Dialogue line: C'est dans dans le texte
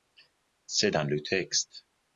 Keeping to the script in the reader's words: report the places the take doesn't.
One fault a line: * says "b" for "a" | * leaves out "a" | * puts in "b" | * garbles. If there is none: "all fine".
* leaves out "dans"